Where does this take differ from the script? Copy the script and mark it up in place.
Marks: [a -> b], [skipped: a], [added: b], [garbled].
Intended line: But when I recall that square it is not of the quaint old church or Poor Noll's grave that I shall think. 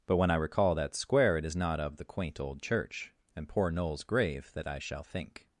But when I recall that square it is not of the quaint old church [or -> and] Poor Noll's grave that I shall think.